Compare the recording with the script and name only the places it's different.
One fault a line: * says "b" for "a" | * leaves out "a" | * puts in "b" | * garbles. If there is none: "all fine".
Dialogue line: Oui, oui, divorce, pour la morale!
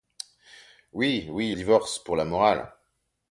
all fine